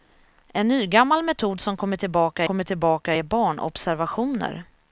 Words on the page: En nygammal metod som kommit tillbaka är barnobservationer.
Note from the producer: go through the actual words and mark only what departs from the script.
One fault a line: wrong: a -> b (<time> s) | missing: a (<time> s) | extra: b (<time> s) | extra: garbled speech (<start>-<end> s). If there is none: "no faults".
extra: kommit tillbaka (2.4 s)